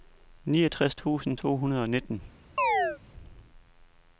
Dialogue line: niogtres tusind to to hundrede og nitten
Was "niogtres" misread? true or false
false